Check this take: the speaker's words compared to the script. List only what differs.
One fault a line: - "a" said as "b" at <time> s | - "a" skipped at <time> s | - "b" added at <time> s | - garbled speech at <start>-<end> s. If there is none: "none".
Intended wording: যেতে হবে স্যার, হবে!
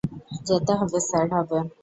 none